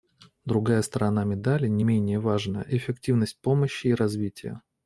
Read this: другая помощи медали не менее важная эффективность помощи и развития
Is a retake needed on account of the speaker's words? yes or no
yes